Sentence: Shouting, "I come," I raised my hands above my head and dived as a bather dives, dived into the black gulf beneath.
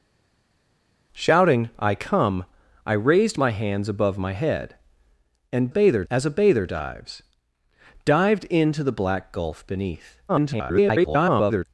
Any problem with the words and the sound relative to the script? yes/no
yes